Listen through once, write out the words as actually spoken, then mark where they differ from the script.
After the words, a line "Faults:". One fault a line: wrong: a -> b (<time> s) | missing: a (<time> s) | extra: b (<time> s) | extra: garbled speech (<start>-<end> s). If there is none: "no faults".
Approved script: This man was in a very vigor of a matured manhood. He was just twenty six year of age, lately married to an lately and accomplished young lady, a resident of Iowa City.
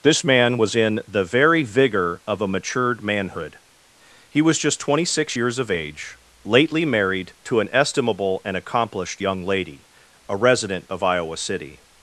This man was in the very vigor of a matured manhood. He was just twenty six years of age, lately married to an estimable and accomplished young lady, a resident of Iowa City.
Faults:
wrong: a -> the (1.1 s)
wrong: year -> years (5.3 s)
wrong: lately -> estimable (7.7 s)